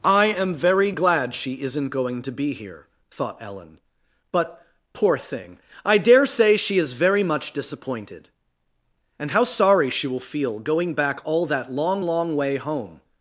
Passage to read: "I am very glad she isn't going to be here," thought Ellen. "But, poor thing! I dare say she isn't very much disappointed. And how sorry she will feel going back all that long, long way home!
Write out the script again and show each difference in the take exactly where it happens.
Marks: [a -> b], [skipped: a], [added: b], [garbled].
"I am very glad she isn't going to be here," thought Ellen. "But, poor thing! I dare say she [isn't -> is] very much disappointed. And how sorry she will feel going back all that long, long way home!